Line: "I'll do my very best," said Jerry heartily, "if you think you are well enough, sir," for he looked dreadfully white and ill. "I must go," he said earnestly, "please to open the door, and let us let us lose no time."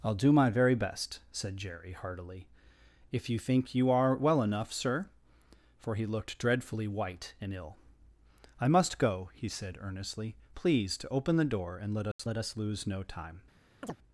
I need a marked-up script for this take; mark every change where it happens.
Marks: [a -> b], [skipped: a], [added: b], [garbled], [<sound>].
"I'll do my very best," said Jerry heartily, "if you think you are well enough, sir," for he looked dreadfully white and ill. "I must go," he said earnestly, "please to open the door, and let us [dropout] let us lose no time." [chirp]